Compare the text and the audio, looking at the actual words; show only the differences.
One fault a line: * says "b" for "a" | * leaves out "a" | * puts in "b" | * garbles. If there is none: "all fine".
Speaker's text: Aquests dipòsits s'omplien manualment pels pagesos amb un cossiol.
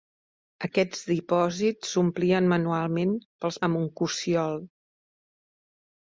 * leaves out "pagesos"